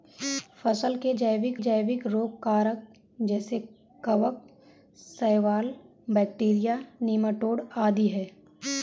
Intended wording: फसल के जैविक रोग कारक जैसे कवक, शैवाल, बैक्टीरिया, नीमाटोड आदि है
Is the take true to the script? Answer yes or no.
no